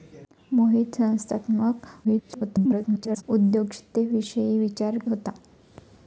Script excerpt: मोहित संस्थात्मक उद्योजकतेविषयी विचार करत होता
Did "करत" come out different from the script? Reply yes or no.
yes